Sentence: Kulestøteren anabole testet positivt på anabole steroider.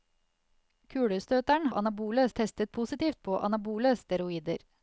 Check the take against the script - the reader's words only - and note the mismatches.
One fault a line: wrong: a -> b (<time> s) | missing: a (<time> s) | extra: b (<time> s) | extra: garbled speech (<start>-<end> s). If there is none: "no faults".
no faults